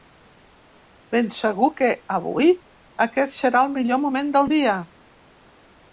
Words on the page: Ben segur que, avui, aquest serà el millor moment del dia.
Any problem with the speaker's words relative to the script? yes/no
no